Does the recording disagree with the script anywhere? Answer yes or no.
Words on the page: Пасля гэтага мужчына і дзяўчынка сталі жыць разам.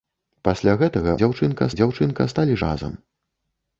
yes